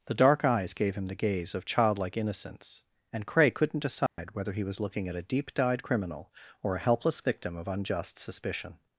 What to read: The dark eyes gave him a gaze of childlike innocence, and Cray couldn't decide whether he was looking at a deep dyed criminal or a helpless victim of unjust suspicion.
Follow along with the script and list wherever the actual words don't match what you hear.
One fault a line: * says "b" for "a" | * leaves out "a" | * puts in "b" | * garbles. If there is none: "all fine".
* says "the" for "a"